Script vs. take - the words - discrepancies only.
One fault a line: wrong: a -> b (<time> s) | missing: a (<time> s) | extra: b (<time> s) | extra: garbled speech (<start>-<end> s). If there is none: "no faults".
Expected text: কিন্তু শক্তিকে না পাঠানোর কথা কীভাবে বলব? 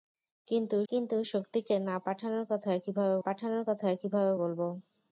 extra: কিন্তু (0.9 s)
extra: পাঠানোর কথা কীভাবে (3.2 s)